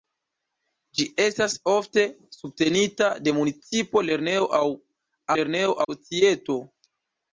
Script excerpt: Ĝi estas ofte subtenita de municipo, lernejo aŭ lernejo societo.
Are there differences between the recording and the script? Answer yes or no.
no